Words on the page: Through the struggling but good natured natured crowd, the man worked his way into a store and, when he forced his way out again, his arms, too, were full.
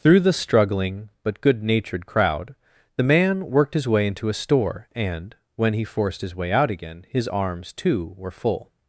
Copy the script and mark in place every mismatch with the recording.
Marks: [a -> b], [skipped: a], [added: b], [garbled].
Through the struggling but good natured [skipped: natured] crowd, the man worked his way into a store and, when he forced his way out again, his arms, too, were full.